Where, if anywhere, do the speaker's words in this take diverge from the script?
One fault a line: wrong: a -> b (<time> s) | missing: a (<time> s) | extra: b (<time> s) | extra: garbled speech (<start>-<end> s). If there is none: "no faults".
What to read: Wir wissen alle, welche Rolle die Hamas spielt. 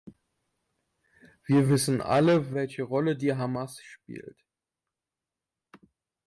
no faults